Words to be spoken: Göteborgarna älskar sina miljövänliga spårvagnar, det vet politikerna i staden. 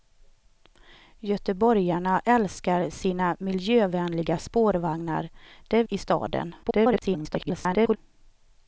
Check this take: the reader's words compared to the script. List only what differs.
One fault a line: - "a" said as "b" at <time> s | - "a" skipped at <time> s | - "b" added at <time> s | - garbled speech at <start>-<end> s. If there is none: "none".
- "vet politikerna" skipped at 5.8 s
- garbled speech at 6.6-8.0 s